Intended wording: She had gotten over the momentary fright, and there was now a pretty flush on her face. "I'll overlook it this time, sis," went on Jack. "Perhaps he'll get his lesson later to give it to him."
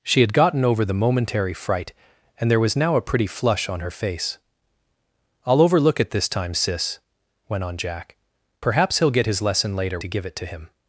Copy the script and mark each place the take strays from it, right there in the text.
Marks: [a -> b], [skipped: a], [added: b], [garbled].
She had gotten over the momentary fright, and there was now a pretty flush on her face. "I'll overlook it this time, sis," went on Jack. "Perhaps he'll get his lesson later to give it to him."